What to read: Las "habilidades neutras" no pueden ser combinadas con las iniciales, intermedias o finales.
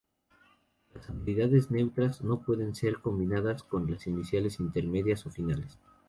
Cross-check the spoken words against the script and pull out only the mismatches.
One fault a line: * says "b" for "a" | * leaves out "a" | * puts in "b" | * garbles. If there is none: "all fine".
all fine